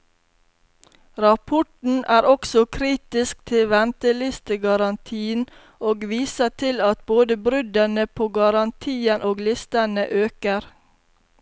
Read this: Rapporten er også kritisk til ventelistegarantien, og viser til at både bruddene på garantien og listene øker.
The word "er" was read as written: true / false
true